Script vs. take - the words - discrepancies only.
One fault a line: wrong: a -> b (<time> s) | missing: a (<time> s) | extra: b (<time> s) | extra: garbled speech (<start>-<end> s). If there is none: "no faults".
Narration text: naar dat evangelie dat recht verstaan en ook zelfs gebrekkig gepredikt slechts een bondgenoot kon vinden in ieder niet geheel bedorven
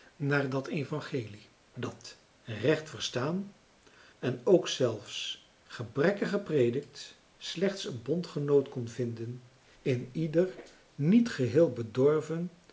no faults